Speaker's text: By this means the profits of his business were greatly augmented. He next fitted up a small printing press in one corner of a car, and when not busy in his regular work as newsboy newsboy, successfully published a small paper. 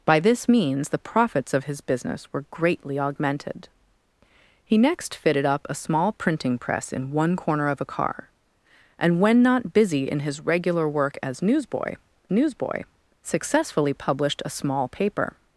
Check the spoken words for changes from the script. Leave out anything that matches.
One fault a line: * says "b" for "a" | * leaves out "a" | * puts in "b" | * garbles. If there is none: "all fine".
all fine